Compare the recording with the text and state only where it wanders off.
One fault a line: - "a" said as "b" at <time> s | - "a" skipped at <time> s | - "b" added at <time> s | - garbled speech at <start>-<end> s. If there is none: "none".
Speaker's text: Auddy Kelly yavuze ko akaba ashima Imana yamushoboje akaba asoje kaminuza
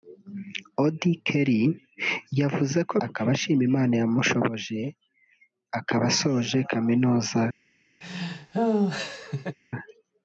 none